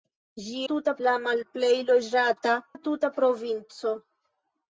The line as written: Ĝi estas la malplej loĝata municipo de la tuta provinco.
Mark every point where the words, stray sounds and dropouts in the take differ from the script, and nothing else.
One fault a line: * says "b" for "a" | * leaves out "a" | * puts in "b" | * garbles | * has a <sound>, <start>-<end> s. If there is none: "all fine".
* says "tuta" for "estas"
* leaves out "municipo de"